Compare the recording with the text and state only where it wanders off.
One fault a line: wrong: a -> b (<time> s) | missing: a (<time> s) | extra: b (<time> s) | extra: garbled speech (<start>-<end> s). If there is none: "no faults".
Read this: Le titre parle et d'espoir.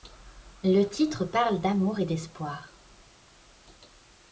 extra: d'amour (1.6 s)